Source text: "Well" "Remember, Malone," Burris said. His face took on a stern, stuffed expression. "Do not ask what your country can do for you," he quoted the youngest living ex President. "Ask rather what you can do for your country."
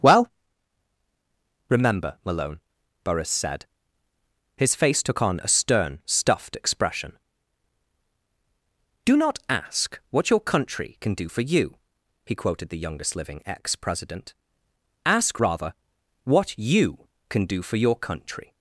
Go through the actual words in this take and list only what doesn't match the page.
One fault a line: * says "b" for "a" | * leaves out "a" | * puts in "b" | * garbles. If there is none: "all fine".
all fine